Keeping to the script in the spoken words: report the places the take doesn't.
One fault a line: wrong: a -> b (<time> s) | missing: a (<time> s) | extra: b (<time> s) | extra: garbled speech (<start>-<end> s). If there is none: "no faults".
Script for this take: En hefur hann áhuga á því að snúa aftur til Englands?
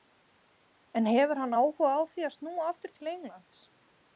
no faults